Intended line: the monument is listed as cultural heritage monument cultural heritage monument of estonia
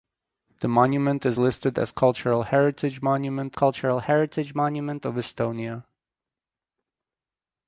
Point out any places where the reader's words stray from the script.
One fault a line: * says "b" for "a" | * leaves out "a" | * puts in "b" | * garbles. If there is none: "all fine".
all fine